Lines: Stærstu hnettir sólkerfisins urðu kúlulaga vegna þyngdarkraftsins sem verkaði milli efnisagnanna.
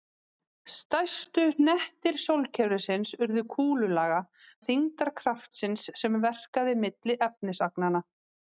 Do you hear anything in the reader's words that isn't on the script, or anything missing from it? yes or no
yes